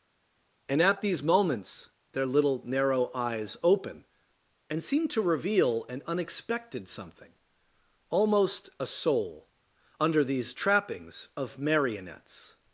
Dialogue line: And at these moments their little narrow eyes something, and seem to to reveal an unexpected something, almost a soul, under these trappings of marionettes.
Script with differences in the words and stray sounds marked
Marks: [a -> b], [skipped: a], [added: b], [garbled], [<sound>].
And at these moments their little narrow eyes [something, -> open] and seem to [skipped: to] reveal an unexpected something, almost a soul, under these trappings of marionettes.